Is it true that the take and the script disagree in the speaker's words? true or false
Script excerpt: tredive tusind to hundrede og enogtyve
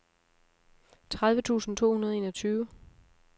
false